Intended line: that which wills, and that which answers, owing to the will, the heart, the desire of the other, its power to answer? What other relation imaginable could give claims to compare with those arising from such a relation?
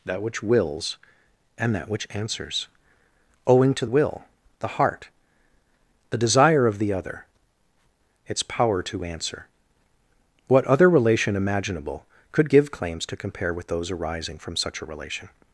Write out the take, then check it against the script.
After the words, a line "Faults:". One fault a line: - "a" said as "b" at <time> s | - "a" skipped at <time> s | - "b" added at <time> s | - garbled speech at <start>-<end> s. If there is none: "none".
that which wills, and that which answers, owing to will, the heart, the desire of the other, its power to answer? What other relation imaginable could give claims to compare with those arising from such a relation?
Faults:
- "the" skipped at 3.9 s